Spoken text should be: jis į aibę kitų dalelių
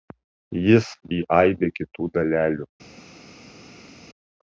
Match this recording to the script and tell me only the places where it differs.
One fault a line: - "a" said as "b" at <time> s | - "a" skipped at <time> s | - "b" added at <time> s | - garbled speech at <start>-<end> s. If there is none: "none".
none